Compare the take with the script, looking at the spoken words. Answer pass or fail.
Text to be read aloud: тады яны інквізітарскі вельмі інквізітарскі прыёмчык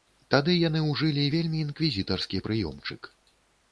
fail